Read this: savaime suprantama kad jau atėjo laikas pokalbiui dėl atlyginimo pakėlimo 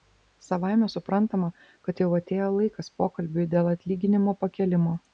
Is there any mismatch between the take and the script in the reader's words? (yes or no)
no